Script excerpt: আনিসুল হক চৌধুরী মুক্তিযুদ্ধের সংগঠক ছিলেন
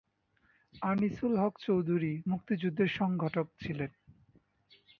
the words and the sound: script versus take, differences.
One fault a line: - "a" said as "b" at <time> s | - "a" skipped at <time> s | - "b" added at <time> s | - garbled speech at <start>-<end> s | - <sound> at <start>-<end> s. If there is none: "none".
none